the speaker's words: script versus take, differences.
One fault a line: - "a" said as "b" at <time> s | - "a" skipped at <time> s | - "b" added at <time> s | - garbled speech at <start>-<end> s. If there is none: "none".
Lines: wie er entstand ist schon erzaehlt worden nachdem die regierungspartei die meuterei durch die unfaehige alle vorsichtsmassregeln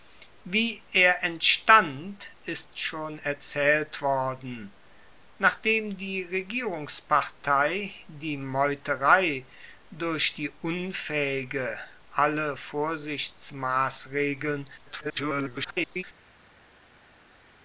- garbled speech at 14.8-16.0 s